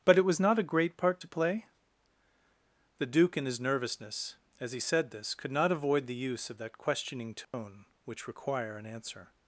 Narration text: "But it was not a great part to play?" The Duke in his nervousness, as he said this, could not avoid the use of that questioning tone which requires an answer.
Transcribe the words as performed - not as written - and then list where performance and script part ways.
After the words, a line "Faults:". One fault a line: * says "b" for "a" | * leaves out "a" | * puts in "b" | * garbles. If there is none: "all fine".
"But it was not a great part to play?" The Duke in his nervousness, as he said this, could not avoid the use of that questioning tone which require an answer.
Faults:
* says "require" for "requires"